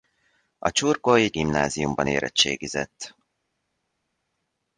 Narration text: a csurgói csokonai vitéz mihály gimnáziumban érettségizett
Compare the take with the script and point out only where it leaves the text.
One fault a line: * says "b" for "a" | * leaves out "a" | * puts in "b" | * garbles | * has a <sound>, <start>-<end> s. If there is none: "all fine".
* leaves out "csokonai vitéz mihály"